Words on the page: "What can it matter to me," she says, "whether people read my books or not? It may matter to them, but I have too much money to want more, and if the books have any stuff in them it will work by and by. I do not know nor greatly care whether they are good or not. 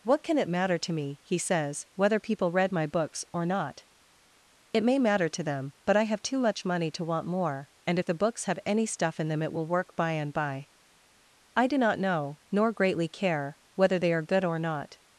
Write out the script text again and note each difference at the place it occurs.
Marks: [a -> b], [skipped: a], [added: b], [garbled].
"What can it matter to me," [she -> he] says, "whether people read my books or not? It may matter to them, but I have too much money to want more, and if the books have any stuff in them it will work by and by. I do not know nor greatly care whether they are good or not.